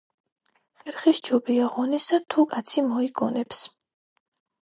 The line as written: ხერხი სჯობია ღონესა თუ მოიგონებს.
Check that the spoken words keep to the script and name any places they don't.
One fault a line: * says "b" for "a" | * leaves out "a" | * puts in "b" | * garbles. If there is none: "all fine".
* puts in "კაცი"